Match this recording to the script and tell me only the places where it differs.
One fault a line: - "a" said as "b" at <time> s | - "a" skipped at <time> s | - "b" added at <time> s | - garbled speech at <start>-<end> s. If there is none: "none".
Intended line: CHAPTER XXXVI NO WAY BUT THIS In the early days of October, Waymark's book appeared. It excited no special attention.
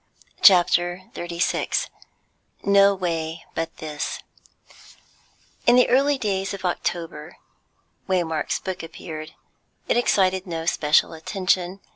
none